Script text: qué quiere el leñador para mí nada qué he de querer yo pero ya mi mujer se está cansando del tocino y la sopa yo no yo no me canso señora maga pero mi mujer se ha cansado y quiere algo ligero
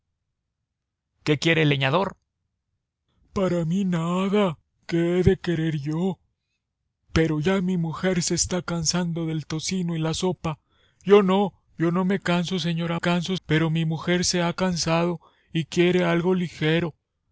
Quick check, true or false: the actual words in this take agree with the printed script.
false